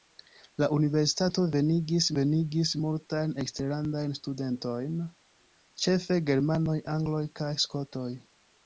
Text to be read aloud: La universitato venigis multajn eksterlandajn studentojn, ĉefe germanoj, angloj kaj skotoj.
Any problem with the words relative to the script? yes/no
yes